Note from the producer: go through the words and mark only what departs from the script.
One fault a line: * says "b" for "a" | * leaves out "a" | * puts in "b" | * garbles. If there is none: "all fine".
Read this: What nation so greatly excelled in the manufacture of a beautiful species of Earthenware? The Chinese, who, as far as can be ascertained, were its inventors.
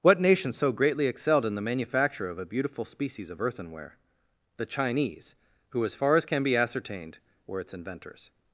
all fine